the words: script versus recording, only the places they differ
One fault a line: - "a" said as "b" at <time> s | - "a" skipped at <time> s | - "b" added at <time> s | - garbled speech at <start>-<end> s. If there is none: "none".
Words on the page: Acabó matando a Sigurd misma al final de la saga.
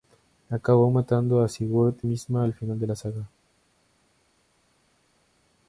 none